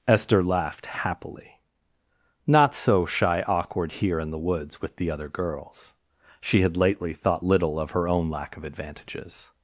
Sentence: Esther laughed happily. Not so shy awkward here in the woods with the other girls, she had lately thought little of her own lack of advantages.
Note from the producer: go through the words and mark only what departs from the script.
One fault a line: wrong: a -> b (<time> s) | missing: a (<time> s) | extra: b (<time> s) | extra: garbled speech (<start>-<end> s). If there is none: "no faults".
no faults